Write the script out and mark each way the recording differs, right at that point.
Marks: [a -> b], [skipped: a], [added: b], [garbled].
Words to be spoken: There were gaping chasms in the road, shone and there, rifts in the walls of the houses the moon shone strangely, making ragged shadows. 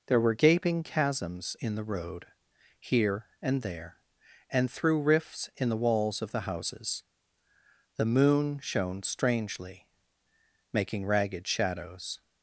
There were gaping chasms in the road, [shone -> here] and there, [added: and through] rifts in the walls of the houses the moon shone strangely, making ragged shadows.